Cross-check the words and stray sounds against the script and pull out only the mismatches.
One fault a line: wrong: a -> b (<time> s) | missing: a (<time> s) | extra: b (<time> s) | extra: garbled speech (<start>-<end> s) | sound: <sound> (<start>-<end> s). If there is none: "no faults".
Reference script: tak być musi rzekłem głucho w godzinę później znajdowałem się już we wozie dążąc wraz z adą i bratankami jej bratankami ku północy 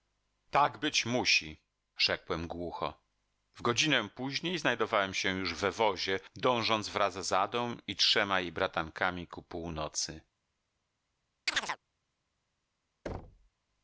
wrong: bratankami -> trzema (7.9 s)
sound: chirp (11.5-11.8 s)
sound: thud (13.1-13.5 s)